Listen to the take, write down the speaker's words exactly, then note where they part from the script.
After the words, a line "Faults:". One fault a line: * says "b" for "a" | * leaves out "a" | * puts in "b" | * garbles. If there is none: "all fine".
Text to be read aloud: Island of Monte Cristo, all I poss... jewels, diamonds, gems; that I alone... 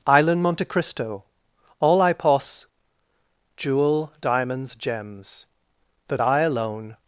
Island Monte Cristo, all I poss... jewel, diamonds, gems; that I alone...
Faults:
* leaves out "of"
* says "jewel" for "jewels"